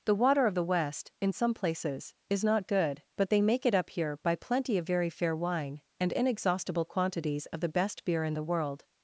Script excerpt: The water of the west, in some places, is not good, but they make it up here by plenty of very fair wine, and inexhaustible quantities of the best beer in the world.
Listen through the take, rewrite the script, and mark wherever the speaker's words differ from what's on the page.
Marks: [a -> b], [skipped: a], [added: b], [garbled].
The water of the west, in some places, is not good, but they make it up here by plenty of very fair wine, and inexhaustible quantities of the best beer in the world.